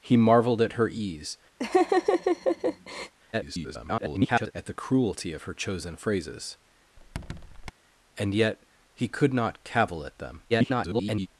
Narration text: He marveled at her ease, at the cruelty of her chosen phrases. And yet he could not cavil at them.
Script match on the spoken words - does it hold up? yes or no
no